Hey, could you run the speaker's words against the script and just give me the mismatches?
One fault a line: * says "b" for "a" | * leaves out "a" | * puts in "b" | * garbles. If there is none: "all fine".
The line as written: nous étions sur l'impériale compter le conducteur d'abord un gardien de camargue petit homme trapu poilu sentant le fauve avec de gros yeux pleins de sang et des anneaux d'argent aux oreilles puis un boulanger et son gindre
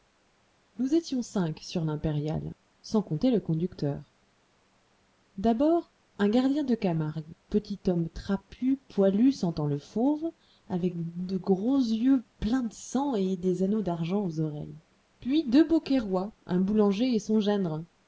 * puts in "cinq"
* puts in "sans"
* puts in "deux beaucairois"